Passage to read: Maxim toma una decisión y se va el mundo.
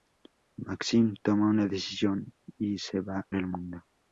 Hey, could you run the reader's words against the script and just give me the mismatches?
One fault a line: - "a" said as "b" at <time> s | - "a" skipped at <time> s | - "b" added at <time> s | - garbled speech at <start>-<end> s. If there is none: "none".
none